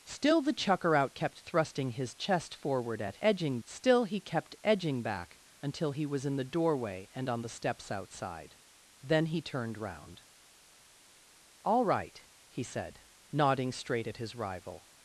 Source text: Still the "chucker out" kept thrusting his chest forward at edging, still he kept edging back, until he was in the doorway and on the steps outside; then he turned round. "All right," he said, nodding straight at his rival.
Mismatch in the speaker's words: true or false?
false